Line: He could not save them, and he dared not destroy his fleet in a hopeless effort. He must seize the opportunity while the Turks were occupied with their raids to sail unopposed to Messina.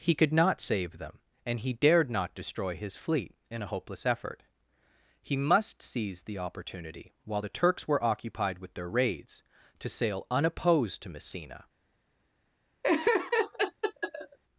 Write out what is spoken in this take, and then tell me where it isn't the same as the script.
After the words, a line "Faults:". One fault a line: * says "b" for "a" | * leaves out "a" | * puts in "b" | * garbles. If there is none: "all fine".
He could not save them, and he dared not destroy his fleet in a hopeless effort. He must seize the opportunity while the Turks were occupied with their raids to sail unopposed to Messina.
Faults:
all fine